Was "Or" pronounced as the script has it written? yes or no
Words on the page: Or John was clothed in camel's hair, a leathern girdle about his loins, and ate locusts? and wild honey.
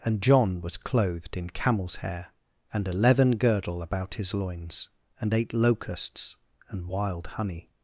no